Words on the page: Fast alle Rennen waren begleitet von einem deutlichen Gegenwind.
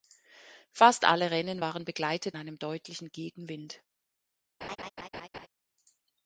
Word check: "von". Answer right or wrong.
wrong